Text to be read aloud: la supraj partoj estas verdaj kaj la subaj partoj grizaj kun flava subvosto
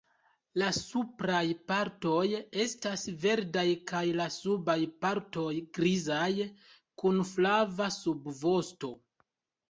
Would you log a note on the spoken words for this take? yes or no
no